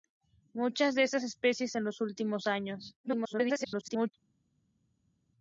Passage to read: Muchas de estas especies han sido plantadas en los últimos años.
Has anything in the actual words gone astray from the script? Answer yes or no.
yes